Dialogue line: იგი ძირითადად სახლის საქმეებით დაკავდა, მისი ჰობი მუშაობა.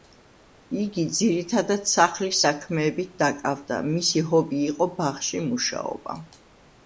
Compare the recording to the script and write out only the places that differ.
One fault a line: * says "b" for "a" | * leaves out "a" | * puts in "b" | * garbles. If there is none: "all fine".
* puts in "იყო ბაღში"